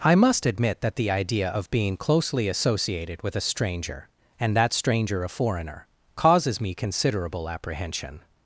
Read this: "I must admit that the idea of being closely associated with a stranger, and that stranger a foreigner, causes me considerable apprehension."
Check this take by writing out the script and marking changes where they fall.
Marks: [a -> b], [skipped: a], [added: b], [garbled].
"I must admit that the idea of being closely associated with a stranger, and that stranger a foreigner, causes me considerable apprehension."